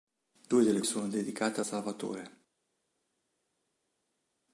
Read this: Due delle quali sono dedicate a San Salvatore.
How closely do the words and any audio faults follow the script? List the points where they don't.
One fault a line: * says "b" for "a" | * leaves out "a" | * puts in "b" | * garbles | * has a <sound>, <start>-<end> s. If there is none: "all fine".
* leaves out "quali"
* leaves out "San"